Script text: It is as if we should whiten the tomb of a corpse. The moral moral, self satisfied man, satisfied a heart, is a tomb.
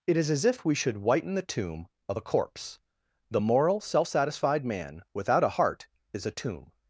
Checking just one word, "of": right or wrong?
right